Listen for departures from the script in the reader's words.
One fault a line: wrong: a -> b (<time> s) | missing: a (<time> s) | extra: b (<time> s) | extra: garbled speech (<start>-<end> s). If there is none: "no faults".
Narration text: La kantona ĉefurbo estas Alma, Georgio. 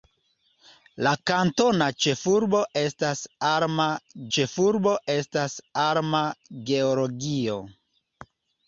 extra: ĉefurbo estas Alma (4.4 s)